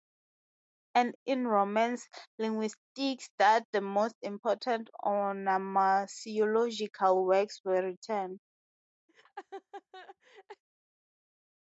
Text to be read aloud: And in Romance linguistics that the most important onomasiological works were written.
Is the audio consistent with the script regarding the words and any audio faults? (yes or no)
no